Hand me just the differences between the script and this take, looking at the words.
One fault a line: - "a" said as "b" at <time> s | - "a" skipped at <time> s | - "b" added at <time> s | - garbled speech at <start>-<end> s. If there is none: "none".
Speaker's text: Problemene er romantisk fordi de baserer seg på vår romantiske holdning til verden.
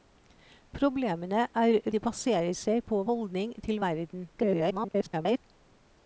- "romantisk fordi" skipped at 1.8 s
- "vår romantiske" skipped at 3.0 s
- garbled speech at 4.4-5.4 s